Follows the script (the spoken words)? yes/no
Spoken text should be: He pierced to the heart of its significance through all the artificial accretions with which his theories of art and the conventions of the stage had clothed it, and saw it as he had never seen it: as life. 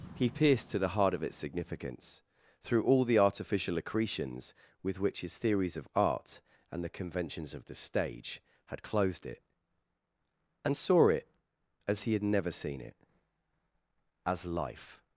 yes